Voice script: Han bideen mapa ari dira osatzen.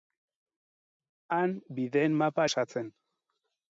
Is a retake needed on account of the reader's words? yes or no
yes